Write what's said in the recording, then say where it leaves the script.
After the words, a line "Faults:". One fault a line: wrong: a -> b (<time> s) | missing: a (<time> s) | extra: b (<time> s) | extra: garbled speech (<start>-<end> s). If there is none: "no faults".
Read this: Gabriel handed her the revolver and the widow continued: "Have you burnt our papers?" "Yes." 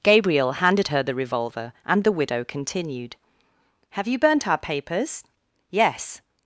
Gabriel handed her the revolver and the widow continued: "Have you burnt our papers?" "Yes."
Faults:
no faults